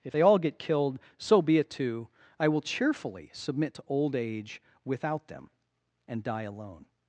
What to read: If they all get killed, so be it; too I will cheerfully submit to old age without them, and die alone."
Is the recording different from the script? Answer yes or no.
no